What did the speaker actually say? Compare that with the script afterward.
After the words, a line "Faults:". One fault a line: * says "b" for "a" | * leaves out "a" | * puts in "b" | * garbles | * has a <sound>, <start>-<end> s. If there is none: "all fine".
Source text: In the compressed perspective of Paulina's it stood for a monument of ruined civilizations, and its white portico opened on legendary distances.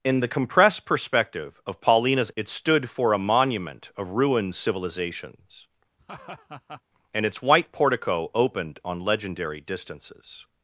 In the compressed perspective of Paulina's it stood for a monument of ruined civilizations, and its white portico opened on legendary distances.
Faults:
* has a laugh, 6.0-6.8 s